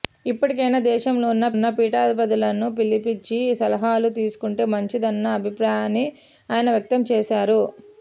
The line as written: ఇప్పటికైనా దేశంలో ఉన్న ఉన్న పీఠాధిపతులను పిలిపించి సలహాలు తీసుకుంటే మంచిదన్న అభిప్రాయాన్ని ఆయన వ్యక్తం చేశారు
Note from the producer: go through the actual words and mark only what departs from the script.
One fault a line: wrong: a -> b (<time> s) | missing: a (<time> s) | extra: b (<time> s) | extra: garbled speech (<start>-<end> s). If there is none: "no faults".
no faults